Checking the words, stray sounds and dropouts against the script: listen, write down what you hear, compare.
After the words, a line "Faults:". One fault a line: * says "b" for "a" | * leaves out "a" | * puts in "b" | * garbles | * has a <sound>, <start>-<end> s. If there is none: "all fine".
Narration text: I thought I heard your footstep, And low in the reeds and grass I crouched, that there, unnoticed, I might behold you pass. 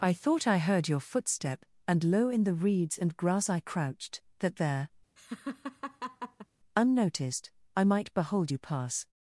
I thought I heard your footstep, And low in the reeds and grass I crouched, that there, unnoticed, I might behold you pass.
Faults:
* has a laugh, 5.2-6.5 s